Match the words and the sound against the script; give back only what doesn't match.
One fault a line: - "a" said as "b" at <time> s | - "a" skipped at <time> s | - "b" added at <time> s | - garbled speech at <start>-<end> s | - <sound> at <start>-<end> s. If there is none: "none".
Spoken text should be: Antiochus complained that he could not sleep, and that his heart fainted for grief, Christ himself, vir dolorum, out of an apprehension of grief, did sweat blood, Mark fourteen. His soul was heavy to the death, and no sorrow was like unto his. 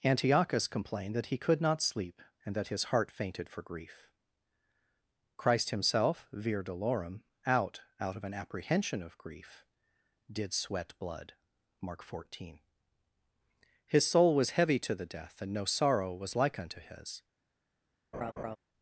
- "out" added at 8.0 s
- laugh at 18.1-18.6 s